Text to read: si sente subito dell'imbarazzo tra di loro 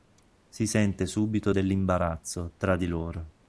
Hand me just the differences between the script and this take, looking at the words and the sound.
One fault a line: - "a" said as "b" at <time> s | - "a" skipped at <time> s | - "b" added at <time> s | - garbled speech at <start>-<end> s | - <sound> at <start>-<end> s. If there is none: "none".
none